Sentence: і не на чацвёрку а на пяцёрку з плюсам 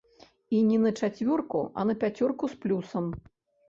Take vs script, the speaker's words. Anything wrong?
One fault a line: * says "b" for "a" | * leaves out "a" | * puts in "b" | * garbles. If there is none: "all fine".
all fine